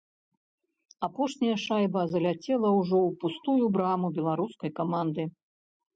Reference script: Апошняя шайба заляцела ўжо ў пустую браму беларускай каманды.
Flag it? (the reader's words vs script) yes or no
no